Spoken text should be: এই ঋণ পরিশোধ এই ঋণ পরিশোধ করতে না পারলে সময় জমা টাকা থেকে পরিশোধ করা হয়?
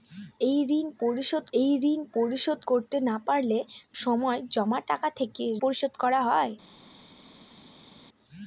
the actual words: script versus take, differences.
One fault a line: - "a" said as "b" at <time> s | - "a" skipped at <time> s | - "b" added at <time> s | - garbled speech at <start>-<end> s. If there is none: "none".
none